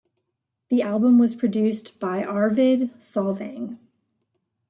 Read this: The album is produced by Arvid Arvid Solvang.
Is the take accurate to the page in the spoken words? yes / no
no